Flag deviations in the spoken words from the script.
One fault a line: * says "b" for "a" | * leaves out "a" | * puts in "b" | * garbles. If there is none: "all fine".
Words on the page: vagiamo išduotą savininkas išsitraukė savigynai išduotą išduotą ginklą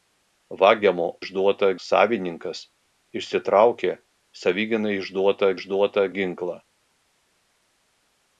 all fine